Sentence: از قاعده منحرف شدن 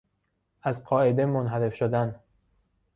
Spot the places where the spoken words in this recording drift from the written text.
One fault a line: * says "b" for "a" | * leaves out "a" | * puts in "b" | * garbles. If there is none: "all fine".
all fine